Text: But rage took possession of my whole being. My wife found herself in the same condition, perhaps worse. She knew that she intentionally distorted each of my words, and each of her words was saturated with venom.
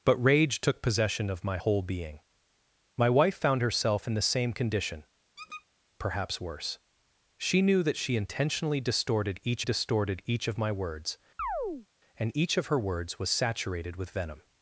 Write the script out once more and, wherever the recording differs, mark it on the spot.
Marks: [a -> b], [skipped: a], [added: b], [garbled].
But rage took possession of my whole being. My wife found herself in the same condition, perhaps worse. She knew that she intentionally distorted each [added: distorted each] of my words, and each of her words was saturated with venom.